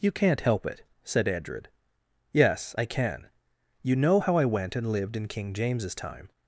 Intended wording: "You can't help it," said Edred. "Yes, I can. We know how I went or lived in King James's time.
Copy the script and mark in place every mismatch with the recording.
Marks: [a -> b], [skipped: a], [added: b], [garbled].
"You can't help it," said Edred. "Yes, I can. [We -> You] know how I went [or -> and] lived in King James's time.